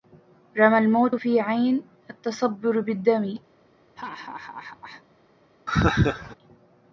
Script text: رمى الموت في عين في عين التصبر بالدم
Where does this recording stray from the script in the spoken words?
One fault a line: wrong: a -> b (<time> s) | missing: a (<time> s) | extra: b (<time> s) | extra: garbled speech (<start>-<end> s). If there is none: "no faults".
missing: في عين (1.8 s)